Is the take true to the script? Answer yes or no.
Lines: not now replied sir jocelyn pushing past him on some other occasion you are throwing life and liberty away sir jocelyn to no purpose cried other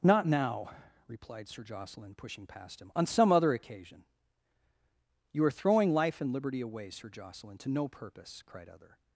yes